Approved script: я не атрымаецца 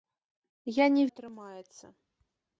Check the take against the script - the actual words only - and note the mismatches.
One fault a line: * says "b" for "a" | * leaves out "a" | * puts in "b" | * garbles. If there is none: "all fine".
all fine